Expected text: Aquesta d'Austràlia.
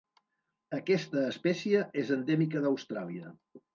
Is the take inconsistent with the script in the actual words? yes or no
yes